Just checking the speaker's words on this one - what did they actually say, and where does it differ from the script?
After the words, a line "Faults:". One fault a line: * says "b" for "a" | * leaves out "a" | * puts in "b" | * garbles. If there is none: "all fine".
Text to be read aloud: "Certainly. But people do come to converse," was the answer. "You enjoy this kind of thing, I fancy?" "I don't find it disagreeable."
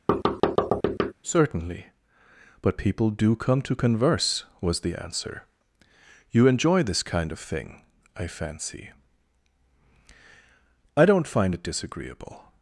"Certainly. But people do come to converse," was the answer. "You enjoy this kind of thing, I fancy?" "I don't find it disagreeable."
Faults:
all fine